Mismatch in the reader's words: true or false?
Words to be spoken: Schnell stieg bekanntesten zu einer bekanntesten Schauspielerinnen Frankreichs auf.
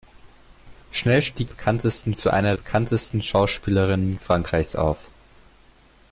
false